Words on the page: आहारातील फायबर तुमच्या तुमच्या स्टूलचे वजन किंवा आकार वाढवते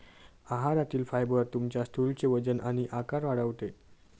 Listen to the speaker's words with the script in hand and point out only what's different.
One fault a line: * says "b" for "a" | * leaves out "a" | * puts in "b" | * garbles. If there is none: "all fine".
* leaves out "तुमच्या"
* says "आणि" for "किंवा"